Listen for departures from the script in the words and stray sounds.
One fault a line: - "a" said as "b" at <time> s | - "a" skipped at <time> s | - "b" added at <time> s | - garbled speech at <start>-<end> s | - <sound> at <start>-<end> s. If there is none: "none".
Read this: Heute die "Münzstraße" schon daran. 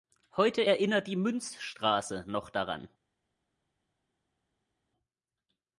- "erinnert" added at 0.7 s
- "schon" said as "noch" at 2.3 s